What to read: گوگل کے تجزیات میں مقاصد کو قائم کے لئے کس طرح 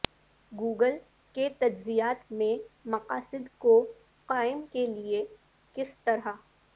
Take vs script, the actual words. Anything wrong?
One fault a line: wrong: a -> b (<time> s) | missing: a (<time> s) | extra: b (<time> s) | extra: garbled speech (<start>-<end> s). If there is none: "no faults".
no faults